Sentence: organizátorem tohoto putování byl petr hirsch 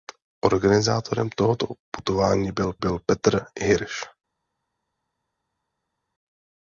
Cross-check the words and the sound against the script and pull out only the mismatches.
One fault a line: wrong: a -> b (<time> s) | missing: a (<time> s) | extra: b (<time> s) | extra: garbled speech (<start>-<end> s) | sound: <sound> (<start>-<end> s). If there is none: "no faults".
extra: byl (2.8 s)